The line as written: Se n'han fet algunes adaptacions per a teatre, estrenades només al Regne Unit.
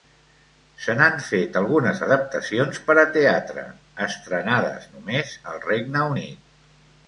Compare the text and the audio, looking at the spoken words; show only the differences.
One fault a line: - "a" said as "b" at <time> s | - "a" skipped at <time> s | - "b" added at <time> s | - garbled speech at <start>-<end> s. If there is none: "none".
none